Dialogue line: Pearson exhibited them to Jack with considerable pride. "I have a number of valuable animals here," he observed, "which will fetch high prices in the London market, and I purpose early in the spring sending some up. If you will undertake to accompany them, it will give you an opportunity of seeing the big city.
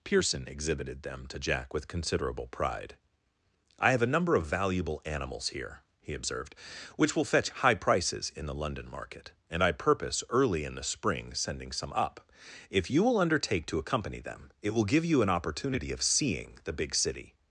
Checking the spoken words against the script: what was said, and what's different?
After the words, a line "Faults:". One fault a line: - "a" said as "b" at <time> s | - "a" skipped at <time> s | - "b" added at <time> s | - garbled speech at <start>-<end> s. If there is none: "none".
Pearson exhibited them to Jack with considerable pride. "I have a number of valuable animals here," he observed, "which will fetch high prices in the London market, and I purpose early in the spring sending some up. If you will undertake to accompany them, it will give you an opportunity of seeing the big city.
Faults:
none